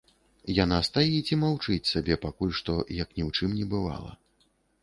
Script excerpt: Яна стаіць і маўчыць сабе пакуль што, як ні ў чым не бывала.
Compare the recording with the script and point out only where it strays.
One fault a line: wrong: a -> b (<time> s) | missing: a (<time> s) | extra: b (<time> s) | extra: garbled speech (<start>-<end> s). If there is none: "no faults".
no faults